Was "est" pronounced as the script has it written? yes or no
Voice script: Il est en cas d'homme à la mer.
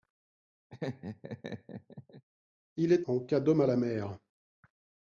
yes